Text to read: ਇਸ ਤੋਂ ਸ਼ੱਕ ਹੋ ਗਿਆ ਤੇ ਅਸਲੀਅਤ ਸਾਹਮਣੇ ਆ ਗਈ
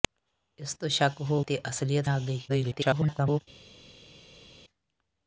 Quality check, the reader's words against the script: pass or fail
fail